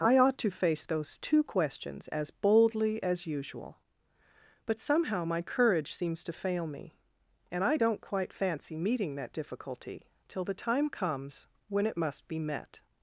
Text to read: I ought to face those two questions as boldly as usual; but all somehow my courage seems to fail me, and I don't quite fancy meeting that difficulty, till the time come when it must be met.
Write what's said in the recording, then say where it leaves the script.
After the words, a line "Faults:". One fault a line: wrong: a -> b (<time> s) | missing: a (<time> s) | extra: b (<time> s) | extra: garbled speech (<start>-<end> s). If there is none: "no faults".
I ought to face those two questions as boldly as usual; but somehow my courage seems to fail me, and I don't quite fancy meeting that difficulty, till the time comes when it must be met.
Faults:
missing: all (4.8 s)
wrong: come -> comes (10.9 s)